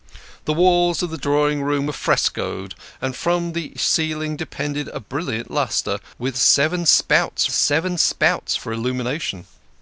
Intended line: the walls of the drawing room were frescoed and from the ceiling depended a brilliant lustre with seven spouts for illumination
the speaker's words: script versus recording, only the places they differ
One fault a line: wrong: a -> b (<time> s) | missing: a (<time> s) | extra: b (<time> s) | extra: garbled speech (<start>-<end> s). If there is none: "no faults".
extra: seven spouts (7.5 s)